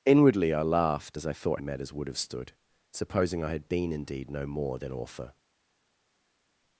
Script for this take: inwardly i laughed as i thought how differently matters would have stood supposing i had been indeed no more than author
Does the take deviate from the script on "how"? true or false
true